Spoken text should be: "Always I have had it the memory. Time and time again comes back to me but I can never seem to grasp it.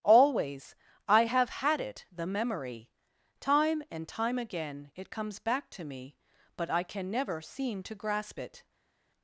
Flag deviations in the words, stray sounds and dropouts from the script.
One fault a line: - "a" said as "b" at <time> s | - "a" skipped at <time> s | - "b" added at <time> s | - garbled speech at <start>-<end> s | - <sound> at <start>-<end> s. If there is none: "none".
- "it" added at 4.9 s